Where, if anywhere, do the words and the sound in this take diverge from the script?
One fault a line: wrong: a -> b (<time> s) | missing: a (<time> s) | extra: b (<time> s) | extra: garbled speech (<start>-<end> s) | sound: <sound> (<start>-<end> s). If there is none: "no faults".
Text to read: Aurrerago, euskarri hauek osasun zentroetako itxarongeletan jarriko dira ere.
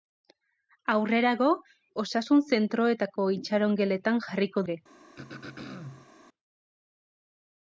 missing: euskarri hauek (1.5 s)
missing: dira (4.6 s)
sound: throat clearing (5.2-6.1 s)